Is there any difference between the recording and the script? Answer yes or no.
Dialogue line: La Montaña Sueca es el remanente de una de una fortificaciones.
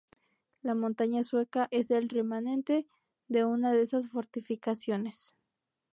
yes